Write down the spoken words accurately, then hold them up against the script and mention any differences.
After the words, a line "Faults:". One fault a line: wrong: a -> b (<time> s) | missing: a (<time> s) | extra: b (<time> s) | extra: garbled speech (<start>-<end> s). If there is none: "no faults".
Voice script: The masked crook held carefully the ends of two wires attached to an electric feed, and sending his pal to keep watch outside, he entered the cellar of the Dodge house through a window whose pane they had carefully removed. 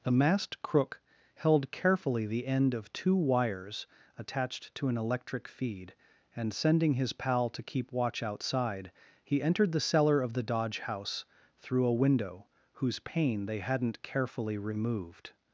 The masked crook held carefully the end of two wires attached to an electric feed, and sending his pal to keep watch outside, he entered the cellar of the Dodge house through a window whose pane they hadn't carefully removed.
Faults:
wrong: ends -> end (2.5 s)
wrong: had -> hadn't (13.6 s)